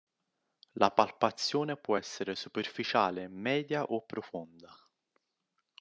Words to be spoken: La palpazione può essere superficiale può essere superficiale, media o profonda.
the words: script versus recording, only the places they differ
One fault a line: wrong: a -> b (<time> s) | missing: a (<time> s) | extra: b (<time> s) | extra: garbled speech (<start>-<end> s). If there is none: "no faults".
missing: può essere superficiale (3.3 s)